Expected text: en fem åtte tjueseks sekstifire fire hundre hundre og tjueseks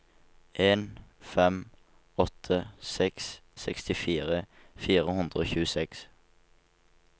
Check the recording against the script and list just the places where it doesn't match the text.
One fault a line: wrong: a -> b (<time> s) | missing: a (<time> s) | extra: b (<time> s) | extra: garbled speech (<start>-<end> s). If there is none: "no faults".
wrong: tjueseks -> seks (2.9 s)
missing: hundre (5.5 s)